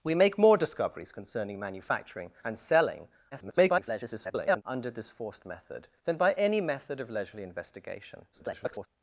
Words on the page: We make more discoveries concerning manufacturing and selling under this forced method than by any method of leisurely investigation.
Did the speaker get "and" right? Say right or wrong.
right